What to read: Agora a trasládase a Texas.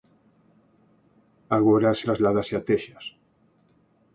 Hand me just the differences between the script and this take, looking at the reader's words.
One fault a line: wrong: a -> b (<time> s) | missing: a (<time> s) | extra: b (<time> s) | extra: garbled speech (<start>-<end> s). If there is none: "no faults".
no faults